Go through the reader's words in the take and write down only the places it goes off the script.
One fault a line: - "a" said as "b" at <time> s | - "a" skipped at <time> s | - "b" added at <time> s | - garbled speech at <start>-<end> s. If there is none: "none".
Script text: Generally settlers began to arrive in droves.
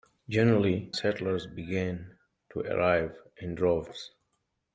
none